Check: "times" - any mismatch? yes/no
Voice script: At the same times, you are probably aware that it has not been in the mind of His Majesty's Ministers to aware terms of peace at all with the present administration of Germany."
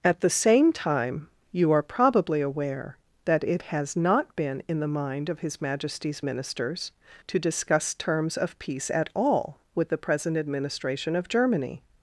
yes